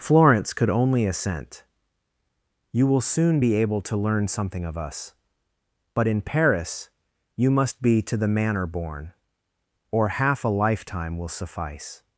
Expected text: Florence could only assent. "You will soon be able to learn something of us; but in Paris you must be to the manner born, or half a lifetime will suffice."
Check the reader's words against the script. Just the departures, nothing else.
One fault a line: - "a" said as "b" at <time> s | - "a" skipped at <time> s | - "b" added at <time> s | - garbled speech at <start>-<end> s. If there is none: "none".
none